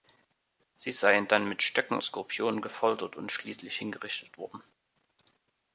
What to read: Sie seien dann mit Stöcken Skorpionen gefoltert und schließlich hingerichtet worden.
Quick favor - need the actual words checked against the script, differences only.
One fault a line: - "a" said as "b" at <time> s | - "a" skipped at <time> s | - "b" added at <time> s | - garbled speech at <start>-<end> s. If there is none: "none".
none